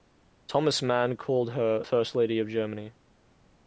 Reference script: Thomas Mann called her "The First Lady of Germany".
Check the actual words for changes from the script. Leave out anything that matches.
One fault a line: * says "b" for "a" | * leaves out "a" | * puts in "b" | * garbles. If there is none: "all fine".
* leaves out "The"